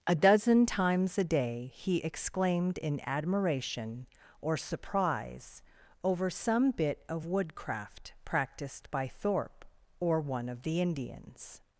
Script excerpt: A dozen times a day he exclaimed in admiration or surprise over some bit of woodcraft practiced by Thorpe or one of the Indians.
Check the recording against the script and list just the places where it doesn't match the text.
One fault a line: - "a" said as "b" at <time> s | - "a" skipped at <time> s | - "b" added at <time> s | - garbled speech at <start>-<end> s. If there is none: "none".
none